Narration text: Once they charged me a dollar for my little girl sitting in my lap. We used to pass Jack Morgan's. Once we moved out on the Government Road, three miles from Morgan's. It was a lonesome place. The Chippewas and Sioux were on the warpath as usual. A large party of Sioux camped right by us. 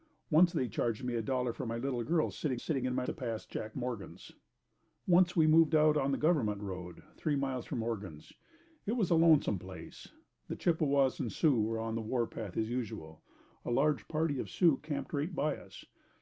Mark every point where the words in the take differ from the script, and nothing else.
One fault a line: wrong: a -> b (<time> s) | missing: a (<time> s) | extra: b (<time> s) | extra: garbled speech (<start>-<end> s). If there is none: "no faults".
extra: sitting (2.6 s)
missing: lap We used (3.0 s)